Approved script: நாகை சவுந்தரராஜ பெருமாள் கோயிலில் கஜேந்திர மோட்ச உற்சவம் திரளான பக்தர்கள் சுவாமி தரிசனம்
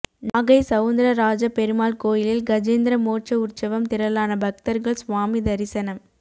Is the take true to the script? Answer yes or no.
yes